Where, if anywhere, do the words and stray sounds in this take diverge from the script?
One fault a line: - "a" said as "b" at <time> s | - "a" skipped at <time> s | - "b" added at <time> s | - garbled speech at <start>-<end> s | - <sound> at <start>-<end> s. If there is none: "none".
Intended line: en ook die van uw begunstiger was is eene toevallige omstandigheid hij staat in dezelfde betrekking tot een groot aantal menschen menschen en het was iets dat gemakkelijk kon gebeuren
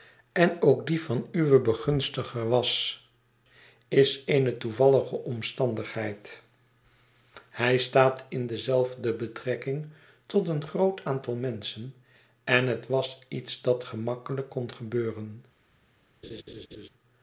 - "menschen" skipped at 11.9 s
- laugh at 16.2-16.9 s